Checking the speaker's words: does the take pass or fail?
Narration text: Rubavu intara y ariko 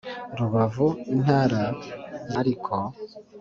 pass